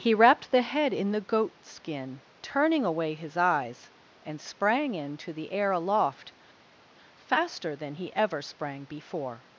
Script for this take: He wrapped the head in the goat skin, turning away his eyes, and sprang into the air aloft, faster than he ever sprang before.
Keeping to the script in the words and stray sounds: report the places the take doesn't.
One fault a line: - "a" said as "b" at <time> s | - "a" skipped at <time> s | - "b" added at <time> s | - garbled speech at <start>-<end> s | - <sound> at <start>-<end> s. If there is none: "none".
none